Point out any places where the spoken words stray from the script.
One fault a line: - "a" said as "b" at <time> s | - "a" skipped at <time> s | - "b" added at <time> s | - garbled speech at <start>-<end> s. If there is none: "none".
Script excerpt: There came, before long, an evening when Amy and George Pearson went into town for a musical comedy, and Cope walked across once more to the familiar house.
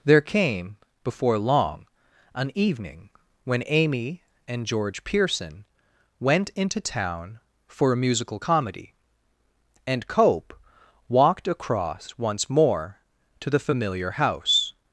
none